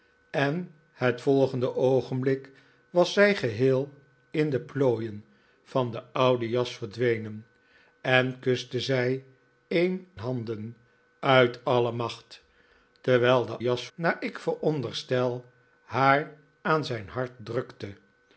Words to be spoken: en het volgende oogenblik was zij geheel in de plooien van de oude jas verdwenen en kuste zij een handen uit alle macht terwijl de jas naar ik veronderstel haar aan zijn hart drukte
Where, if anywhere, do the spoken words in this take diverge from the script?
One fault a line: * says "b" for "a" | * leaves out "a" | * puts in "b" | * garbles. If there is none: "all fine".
all fine